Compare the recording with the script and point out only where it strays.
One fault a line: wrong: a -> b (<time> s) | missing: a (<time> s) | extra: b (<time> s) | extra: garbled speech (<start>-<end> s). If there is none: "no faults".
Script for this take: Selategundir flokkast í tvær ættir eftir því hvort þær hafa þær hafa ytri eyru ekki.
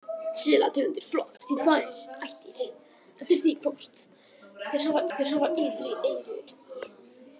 no faults